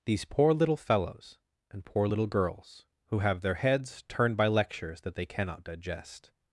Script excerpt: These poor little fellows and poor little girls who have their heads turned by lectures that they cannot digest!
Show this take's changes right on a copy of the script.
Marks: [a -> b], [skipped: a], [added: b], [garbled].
These poor little fellows and poor little girls who have their heads turned by lectures that they cannot digest!